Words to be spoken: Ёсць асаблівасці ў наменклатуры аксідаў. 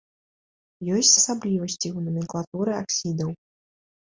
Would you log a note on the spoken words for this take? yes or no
no